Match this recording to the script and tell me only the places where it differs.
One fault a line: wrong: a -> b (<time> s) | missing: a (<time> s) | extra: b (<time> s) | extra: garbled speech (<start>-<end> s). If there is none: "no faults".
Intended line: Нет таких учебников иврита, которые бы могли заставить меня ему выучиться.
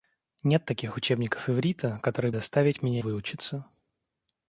missing: бы могли (2.3 s)
missing: ему (3.0 s)